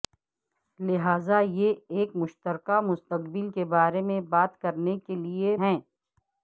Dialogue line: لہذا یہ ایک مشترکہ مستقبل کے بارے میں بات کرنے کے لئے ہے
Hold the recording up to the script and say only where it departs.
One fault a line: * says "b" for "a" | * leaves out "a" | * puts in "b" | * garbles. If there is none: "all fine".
all fine